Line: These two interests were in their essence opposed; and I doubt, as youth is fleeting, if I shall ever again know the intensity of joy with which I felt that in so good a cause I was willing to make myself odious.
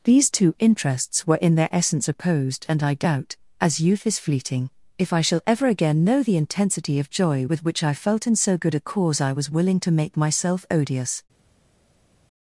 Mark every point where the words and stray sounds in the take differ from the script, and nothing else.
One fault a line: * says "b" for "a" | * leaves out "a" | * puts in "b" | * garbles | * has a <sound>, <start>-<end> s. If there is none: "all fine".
* leaves out "that"